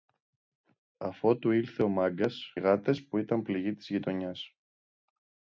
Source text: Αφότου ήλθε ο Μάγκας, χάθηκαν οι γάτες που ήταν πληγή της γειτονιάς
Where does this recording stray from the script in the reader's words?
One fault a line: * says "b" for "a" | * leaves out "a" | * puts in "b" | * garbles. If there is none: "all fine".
* leaves out "χάθηκαν"